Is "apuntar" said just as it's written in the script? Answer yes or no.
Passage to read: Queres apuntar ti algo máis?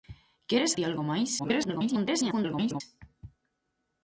no